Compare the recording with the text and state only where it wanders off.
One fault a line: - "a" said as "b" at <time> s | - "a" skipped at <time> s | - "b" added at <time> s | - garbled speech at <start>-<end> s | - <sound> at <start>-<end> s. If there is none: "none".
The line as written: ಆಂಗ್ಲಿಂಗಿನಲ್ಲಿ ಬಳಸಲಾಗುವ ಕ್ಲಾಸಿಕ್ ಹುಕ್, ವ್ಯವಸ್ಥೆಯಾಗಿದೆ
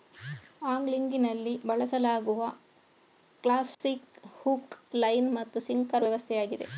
- dropout at 3.7-3.8 s
- "ಲೈನ್ ಮತ್ತು ಸಿಂಕರ್" added at 5.0 s